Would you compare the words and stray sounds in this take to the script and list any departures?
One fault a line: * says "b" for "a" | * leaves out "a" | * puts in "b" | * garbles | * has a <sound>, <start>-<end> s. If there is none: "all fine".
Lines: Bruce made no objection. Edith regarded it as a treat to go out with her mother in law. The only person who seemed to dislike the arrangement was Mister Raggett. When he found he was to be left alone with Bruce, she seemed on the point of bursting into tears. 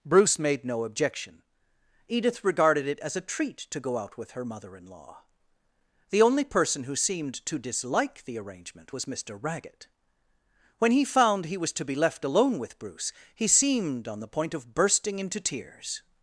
* says "he" for "she"